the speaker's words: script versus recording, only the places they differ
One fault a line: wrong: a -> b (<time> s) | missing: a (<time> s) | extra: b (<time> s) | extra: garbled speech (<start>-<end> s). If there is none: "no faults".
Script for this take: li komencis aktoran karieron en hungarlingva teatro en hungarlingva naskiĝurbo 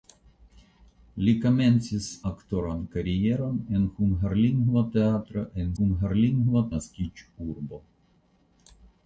no faults